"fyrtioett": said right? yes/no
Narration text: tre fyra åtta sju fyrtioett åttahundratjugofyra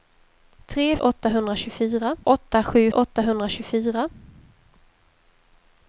no